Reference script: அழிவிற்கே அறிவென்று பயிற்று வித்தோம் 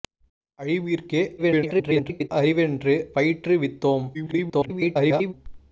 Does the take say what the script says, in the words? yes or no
no